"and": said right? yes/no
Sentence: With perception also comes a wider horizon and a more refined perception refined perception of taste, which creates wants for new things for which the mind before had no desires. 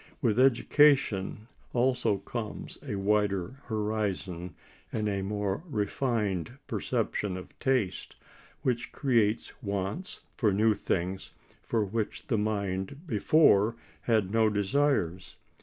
yes